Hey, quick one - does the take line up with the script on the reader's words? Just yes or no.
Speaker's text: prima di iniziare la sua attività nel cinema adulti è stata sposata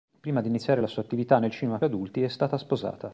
yes